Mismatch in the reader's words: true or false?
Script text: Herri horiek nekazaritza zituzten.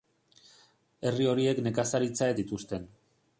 false